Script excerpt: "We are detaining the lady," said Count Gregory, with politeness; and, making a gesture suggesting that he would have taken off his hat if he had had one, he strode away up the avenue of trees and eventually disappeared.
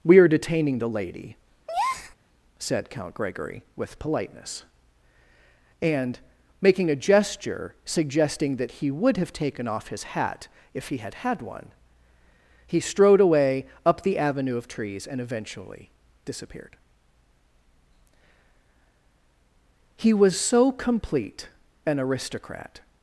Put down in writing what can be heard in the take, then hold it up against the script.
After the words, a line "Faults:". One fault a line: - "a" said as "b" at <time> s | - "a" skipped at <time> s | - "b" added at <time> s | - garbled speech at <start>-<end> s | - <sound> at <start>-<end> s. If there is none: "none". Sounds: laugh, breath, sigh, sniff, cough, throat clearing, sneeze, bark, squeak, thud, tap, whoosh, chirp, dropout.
"We are detaining the lady," said Count Gregory, with politeness; and, making a gesture suggesting that he would have taken off his hat if he had had one, he strode away up the avenue of trees and eventually disappeared. He was so complete an aristocrat
Faults:
- breath at 1.7-2.1 s
- "He was so complete an aristocrat" added at 20.0 s